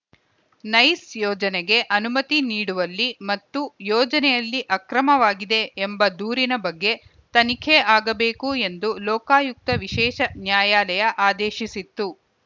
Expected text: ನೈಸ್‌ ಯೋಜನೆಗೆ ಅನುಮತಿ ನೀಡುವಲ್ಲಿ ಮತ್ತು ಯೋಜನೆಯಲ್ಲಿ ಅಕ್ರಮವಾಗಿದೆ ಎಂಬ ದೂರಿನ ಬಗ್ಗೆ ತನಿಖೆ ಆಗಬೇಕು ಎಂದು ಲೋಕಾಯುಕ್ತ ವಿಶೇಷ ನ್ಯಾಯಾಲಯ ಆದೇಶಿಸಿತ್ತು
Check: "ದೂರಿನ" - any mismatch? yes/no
no